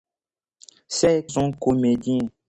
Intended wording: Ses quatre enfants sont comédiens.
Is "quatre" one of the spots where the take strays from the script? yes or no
yes